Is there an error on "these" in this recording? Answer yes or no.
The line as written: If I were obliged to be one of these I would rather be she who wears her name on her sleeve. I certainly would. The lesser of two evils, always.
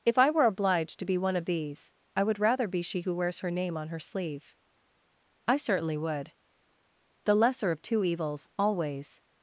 no